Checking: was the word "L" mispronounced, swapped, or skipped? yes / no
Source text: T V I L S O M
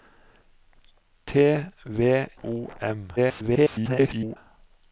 yes